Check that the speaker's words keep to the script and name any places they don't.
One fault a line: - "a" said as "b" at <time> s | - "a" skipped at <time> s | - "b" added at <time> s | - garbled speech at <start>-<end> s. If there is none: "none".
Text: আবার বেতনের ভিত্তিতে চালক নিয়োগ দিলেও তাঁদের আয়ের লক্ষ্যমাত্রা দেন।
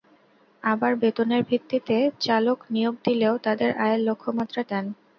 none